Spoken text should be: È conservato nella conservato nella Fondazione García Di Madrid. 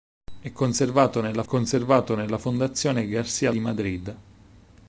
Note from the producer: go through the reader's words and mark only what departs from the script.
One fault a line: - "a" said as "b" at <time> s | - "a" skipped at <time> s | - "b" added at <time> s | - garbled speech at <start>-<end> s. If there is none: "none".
none